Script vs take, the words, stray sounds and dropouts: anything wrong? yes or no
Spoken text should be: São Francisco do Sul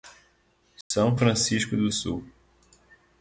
yes